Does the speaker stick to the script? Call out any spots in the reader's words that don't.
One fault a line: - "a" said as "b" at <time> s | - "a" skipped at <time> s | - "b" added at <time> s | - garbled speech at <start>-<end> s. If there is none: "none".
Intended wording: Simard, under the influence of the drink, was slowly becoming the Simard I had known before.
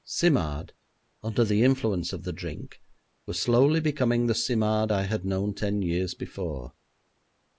- "ten years" added at 5.6 s